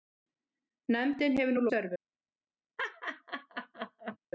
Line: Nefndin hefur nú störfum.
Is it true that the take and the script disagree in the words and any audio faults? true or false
true